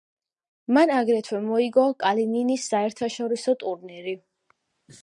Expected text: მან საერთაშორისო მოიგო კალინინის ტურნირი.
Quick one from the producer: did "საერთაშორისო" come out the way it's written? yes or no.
no